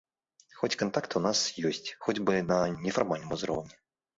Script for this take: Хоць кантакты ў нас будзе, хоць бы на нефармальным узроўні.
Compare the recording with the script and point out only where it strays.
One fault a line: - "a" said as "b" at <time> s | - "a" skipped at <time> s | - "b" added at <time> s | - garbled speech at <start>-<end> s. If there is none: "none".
- "будзе" said as "ёсць" at 1.7 s